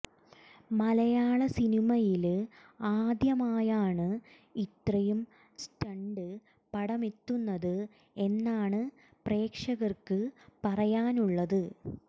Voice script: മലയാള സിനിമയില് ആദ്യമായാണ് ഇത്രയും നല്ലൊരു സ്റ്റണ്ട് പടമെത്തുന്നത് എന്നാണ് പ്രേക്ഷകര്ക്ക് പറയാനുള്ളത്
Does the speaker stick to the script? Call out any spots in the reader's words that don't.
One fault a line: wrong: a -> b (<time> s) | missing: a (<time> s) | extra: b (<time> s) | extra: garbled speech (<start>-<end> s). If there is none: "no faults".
missing: നല്ലൊരു (5.2 s)